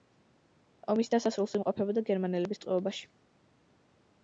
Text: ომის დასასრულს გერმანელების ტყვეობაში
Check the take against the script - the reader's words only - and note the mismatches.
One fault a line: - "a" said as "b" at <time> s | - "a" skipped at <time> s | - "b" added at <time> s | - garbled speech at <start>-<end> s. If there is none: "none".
- "იმყოფებოდა" added at 1.6 s